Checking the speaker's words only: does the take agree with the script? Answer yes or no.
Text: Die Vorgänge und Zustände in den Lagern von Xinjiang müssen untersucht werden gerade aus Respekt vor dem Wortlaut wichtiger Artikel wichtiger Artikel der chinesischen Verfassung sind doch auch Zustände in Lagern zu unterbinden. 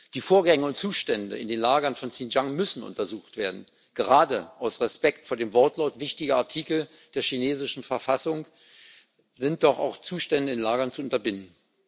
no